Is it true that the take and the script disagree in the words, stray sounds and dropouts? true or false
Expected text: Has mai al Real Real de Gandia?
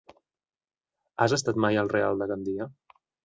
true